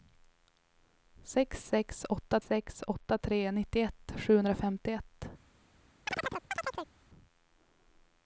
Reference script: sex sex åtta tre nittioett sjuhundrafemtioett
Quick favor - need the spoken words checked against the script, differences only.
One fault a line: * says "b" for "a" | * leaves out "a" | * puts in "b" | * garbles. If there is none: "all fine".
* puts in "sex åtta"